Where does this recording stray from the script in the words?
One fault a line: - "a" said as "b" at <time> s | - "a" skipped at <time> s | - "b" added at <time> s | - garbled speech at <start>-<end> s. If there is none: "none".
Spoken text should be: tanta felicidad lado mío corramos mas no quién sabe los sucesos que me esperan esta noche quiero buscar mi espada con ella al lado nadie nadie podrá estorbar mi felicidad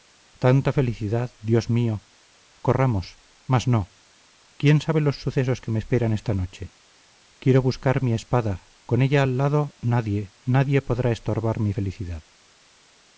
- "lado" said as "dios" at 1.4 s